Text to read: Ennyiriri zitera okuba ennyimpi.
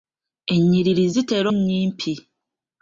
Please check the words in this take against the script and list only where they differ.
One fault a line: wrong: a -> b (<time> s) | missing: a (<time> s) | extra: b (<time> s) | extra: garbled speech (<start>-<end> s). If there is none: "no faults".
missing: okuba (1.5 s)